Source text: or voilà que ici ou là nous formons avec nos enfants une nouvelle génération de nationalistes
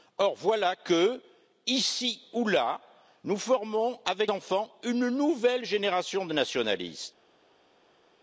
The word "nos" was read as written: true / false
false